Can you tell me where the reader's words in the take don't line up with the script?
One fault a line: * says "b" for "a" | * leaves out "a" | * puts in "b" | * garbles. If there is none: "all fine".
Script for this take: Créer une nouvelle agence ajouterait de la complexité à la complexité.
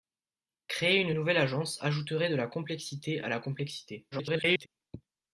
* garbles